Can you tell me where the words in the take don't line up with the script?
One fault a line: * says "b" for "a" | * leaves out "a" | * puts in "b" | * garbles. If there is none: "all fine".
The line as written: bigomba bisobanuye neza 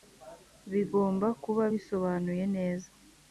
* puts in "kuba"